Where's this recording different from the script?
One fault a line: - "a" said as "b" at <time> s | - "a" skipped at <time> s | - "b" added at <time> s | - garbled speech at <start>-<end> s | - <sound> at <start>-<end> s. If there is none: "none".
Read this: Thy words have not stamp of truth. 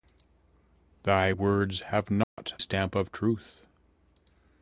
- dropout at 2.2-2.4 s